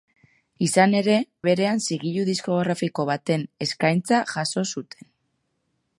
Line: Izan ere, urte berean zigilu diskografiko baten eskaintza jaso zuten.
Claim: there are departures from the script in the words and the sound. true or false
true